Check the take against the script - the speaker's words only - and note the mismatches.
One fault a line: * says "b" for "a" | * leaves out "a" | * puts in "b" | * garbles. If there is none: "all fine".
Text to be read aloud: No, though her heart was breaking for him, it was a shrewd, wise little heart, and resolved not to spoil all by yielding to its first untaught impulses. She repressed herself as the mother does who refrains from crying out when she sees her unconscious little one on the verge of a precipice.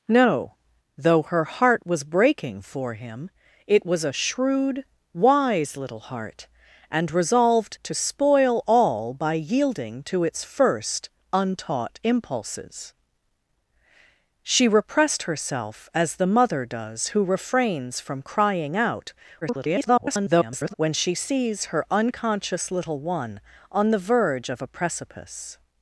* leaves out "not"
* garbles